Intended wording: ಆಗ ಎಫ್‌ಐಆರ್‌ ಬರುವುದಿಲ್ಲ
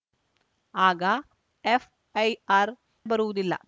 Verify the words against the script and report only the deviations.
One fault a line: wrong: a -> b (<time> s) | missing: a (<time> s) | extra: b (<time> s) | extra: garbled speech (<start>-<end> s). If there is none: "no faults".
no faults